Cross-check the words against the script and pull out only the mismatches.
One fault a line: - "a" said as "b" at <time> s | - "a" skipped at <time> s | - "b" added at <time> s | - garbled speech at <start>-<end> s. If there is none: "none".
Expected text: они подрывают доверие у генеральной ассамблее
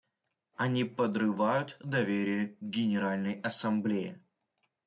- "у" said as "к" at 2.5 s